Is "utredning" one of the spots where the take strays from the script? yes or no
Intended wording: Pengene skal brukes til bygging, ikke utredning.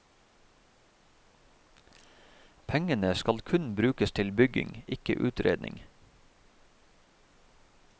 no